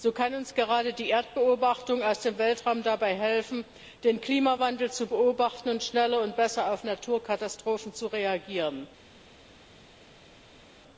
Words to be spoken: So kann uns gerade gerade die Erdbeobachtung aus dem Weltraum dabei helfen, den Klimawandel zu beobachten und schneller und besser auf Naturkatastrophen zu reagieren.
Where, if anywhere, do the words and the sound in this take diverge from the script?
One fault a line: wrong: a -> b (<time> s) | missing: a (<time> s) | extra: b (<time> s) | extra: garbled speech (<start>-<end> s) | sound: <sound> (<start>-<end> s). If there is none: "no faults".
missing: gerade (0.9 s)